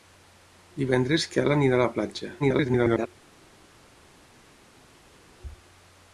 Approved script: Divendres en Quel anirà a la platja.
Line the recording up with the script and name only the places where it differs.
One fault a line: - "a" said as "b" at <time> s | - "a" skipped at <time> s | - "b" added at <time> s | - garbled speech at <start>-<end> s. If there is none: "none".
- garbled speech at 2.4-3.1 s